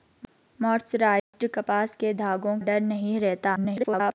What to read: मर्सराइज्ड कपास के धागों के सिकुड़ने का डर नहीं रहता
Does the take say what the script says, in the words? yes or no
no